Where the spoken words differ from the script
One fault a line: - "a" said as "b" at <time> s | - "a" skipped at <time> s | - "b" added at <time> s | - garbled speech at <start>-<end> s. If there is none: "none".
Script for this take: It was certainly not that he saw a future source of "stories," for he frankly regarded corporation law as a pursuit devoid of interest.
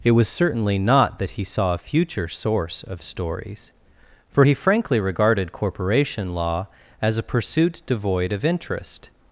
none